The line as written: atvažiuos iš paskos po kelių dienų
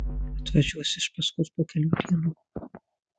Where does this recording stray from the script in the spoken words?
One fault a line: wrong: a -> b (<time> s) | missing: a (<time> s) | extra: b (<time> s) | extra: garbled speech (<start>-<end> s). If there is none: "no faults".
no faults